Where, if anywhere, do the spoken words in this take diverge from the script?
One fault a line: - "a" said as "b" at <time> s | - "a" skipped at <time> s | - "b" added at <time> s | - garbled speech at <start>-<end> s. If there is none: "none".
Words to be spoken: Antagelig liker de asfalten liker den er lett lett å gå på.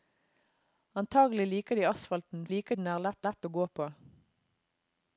none